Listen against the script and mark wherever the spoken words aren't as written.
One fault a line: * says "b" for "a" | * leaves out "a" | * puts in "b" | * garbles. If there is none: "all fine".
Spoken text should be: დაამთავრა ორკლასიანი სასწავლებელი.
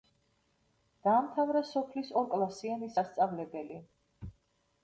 * puts in "სოფლის"